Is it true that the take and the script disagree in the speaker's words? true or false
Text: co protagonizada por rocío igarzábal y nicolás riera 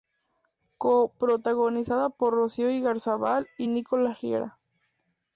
false